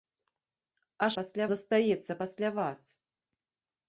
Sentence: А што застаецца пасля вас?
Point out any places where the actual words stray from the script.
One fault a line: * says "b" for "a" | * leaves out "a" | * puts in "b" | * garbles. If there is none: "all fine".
* says "пасля" for "што"